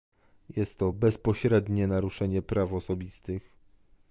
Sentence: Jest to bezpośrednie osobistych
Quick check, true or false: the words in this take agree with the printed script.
false